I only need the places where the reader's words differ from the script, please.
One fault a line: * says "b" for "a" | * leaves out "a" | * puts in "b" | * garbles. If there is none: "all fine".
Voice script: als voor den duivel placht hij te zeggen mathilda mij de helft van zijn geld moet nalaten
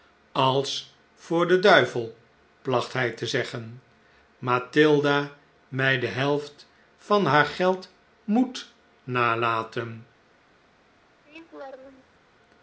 * says "haar" for "zijn"